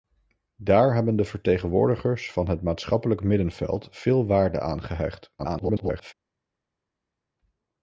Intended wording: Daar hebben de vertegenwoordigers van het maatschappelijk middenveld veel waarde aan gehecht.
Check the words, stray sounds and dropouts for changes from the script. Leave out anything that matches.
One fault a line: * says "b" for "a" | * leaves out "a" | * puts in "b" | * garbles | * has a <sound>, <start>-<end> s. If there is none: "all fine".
* garbles